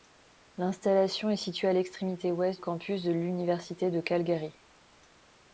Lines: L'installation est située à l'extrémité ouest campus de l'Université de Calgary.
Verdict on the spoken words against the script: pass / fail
pass